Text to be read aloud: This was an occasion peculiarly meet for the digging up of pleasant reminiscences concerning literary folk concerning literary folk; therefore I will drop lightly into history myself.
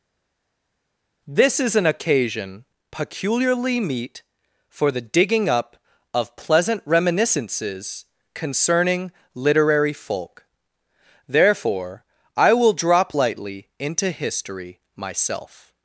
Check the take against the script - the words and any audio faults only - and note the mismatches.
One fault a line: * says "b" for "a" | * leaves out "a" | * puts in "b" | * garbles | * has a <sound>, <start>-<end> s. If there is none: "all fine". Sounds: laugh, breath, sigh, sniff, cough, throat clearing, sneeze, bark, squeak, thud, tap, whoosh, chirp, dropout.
* says "is" for "was"
* leaves out "concerning literary folk"